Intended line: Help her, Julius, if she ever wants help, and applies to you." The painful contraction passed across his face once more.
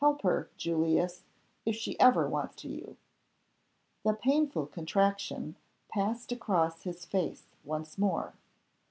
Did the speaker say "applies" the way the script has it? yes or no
no